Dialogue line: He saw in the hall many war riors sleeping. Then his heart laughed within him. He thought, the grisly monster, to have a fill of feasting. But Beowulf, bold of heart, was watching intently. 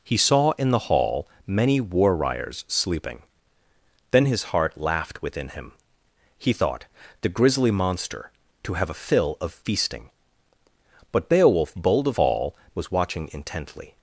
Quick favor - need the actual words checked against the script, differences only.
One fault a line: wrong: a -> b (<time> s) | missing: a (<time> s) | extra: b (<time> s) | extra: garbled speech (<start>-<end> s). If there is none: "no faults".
wrong: heart -> hall (12.2 s)